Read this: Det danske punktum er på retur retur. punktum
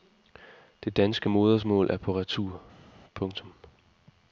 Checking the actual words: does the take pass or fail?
fail